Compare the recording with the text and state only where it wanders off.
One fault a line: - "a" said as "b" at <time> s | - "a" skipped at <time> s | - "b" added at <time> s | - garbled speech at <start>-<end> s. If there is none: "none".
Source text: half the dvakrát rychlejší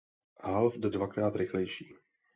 none